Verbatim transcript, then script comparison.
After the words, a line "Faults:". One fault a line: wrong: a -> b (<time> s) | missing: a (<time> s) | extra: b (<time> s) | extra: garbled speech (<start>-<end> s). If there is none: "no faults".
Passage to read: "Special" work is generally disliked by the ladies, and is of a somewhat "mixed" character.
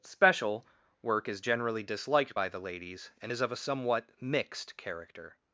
"Special" work is generally disliked by the ladies, and is of a somewhat "mixed" character.
Faults:
no faults